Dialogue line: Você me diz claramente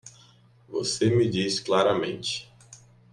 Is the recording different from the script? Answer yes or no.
no